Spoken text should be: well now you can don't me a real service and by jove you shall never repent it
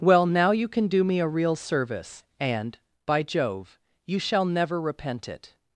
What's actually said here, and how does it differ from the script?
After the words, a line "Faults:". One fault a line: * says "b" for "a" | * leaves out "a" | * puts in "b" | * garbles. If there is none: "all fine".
well now you can do me a real service and by jove you shall never repent it
Faults:
* says "do" for "don't"